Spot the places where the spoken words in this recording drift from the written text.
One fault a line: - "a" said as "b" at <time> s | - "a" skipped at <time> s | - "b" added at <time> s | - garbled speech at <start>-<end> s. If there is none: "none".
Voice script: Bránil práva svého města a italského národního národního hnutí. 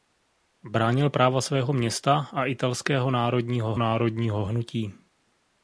none